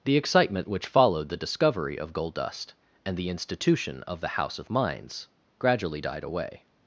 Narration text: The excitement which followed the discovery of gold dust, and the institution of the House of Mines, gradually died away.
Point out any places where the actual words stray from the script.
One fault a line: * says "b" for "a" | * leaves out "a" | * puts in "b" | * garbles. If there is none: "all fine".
all fine